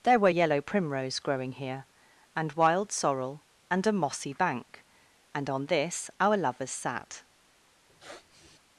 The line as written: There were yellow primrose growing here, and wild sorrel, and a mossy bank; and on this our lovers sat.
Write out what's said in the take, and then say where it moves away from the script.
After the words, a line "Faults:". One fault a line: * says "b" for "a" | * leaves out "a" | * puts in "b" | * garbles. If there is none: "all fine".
There were yellow primrose growing here, and wild sorrel, and a mossy bank; and on this our lovers sat.
Faults:
all fine